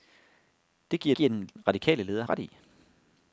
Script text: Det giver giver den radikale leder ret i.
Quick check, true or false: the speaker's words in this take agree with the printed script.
true